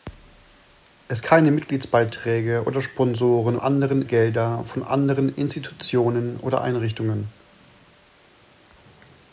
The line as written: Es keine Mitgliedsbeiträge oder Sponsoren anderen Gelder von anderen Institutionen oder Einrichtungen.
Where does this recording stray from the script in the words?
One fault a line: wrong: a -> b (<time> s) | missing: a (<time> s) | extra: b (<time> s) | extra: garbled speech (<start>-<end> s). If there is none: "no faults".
no faults